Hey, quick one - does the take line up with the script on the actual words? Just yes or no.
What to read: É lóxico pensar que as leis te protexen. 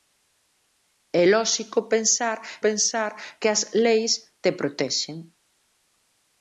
no